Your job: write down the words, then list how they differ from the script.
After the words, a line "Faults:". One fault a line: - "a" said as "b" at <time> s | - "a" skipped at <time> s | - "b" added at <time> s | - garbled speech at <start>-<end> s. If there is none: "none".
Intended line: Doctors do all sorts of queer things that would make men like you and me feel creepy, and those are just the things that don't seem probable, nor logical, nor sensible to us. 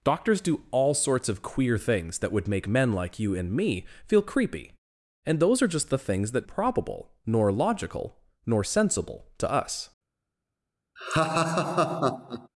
Doctors do all sorts of queer things that would make men like you and me feel creepy, and those are just the things that probable, nor logical, nor sensible to us.
Faults:
- "don't seem" skipped at 6.5 s